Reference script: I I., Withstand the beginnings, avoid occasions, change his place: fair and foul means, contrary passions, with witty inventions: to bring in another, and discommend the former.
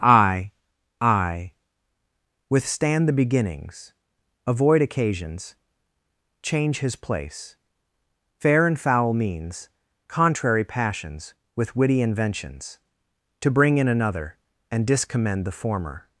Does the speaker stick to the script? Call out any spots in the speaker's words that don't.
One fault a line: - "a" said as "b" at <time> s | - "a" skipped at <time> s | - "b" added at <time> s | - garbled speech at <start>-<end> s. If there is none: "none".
none